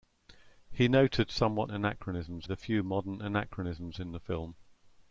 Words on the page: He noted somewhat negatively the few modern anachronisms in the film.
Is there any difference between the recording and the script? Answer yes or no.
yes